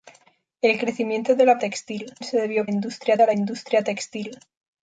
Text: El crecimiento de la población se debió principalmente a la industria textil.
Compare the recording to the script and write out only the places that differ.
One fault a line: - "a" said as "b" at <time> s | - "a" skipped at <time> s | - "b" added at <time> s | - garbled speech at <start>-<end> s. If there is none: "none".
- "población" said as "textil" at 1.6 s
- "principalmente" said as "industria" at 2.7 s